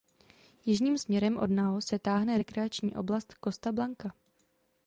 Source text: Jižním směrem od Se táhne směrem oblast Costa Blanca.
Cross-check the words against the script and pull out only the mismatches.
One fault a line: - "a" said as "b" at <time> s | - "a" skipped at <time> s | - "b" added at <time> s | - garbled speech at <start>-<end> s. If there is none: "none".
- "Nao" added at 1.5 s
- "směrem" said as "rekreační" at 2.4 s